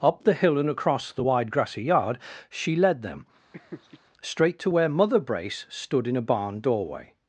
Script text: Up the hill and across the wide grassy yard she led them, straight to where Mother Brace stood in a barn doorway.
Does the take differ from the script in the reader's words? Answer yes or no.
no